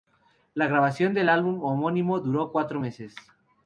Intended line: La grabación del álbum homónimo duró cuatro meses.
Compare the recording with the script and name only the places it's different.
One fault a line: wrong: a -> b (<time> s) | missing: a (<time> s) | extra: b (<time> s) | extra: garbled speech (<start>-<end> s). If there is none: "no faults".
no faults